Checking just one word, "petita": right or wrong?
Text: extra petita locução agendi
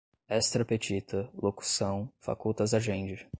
right